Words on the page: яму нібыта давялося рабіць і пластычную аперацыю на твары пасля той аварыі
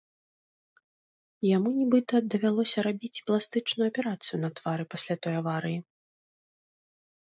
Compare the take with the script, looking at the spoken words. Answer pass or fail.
pass